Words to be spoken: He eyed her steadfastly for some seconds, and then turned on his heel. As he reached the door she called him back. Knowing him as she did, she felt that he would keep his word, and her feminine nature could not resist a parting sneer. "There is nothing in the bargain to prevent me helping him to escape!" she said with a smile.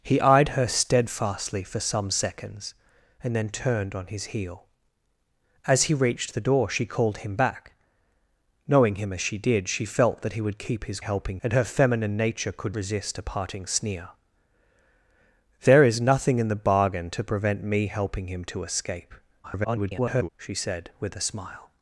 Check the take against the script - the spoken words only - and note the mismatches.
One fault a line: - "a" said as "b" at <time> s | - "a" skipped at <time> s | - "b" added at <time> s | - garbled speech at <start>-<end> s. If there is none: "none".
- "word" said as "helping" at 11.0 s
- "not" skipped at 12.8 s
- garbled speech at 19.4-20.3 s